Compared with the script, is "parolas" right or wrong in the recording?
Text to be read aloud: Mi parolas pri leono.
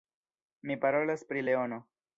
right